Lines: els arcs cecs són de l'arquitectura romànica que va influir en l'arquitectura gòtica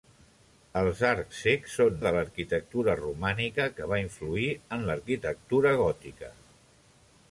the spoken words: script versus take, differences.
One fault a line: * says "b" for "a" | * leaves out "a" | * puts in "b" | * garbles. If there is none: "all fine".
all fine